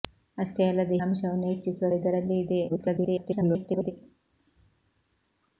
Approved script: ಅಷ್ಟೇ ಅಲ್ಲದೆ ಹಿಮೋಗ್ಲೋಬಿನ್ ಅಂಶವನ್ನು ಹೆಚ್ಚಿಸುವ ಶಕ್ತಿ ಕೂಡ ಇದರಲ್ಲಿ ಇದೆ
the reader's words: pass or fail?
fail